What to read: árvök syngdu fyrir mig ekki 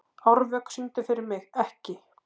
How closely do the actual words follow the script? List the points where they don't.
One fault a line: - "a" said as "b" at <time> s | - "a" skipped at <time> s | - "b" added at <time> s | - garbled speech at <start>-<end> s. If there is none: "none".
none